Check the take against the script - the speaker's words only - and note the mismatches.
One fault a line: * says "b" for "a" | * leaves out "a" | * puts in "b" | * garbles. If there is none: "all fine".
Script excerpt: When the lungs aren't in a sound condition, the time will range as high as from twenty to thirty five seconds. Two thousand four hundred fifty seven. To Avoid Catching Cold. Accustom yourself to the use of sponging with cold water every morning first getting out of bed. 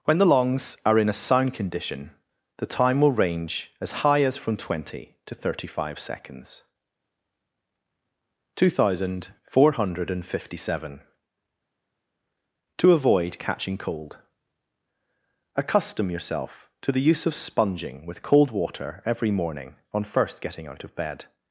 * says "are" for "aren't"
* puts in "on"